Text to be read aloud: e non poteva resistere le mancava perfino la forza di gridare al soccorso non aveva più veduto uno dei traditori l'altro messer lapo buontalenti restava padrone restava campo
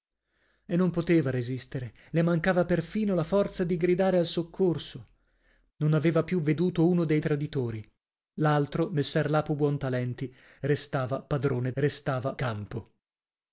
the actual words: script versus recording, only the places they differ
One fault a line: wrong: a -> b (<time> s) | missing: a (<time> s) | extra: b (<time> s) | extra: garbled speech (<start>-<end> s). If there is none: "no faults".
no faults